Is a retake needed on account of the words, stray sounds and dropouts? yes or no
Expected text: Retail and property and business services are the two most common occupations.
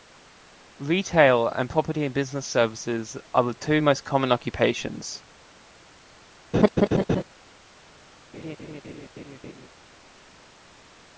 yes